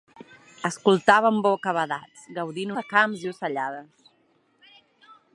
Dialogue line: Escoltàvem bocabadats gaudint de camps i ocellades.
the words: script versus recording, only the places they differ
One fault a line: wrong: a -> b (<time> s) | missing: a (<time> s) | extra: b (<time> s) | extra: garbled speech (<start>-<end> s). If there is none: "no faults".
no faults